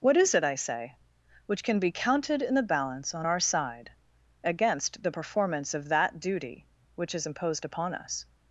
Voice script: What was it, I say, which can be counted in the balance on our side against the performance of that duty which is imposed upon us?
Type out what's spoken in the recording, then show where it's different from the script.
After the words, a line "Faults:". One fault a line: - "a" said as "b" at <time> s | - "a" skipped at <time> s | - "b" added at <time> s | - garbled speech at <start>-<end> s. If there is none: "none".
What is it, I say, which can be counted in the balance on our side against the performance of that duty which is imposed upon us?
Faults:
- "was" said as "is" at 0.2 s